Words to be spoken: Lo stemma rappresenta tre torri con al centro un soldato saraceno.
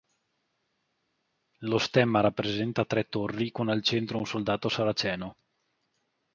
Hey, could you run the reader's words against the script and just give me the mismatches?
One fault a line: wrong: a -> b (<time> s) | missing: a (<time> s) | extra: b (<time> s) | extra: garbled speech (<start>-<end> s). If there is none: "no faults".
no faults